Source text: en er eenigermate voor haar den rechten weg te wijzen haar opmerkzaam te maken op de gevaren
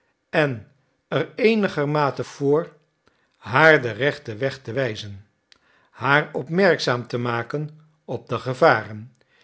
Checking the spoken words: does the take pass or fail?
pass